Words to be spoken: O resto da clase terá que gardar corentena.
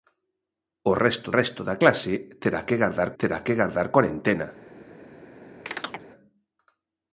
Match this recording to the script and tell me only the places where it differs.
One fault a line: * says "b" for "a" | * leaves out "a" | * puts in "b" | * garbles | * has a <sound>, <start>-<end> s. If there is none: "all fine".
* puts in "resto"
* puts in "terá que gardar"
* has a chirp, 5.7-6.0 s